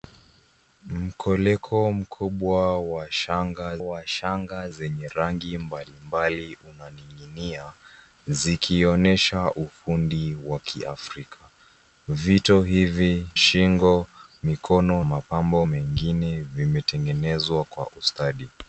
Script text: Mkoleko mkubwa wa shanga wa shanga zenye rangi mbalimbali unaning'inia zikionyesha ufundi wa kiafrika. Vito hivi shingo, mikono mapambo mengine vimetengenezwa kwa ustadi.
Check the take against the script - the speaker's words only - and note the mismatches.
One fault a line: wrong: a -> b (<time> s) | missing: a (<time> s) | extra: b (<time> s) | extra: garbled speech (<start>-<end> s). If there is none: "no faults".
no faults